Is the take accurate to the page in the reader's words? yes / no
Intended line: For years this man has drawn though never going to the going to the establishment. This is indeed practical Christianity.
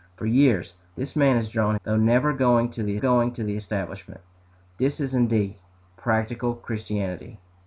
yes